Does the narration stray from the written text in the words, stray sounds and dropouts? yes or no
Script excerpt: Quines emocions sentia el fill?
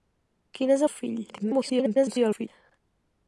yes